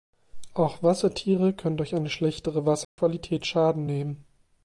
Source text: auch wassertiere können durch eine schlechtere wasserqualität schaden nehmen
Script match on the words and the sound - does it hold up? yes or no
no